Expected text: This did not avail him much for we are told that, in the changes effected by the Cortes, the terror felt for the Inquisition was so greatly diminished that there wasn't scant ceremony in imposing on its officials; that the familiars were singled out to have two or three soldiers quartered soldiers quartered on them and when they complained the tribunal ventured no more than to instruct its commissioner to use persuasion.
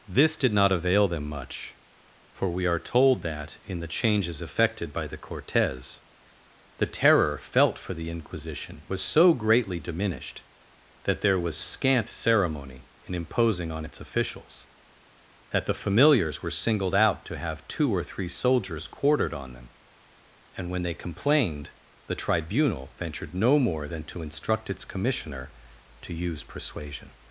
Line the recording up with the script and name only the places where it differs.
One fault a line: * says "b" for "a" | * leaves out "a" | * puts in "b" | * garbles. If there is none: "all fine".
* says "them" for "him"
* says "was" for "wasn't"
* leaves out "soldiers quartered"